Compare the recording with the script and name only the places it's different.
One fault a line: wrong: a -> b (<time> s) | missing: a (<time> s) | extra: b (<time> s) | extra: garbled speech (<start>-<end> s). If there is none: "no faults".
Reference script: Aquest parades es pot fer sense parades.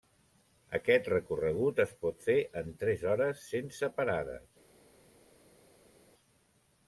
wrong: parades -> recorregut (1.1 s)
extra: en tres hores (2.6 s)